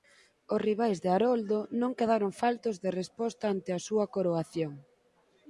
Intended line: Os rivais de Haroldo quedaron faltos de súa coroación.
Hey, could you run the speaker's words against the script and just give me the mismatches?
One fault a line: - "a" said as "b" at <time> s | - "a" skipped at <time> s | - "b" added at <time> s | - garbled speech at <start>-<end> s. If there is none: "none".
- "non" added at 1.8 s
- "resposta ante a" added at 3.0 s